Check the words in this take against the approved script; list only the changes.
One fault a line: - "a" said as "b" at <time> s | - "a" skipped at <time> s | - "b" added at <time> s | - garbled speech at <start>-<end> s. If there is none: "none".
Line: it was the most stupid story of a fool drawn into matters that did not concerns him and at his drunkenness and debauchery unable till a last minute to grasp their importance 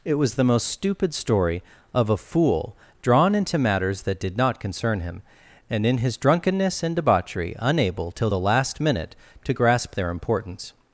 - "concerns" said as "concern" at 4.6 s
- "at" said as "in" at 5.8 s
- "a" said as "the" at 8.3 s